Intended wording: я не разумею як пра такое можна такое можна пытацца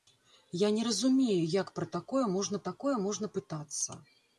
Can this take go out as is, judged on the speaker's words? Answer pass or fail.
pass